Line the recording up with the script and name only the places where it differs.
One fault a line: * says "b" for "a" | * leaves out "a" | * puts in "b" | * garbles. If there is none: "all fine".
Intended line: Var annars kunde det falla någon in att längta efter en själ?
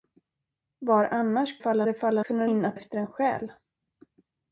* says "falla" for "kunde"
* says "kunde" for "någon"
* leaves out "längta"